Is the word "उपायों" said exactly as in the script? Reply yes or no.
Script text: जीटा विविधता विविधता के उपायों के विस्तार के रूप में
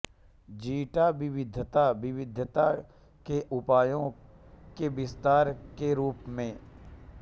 yes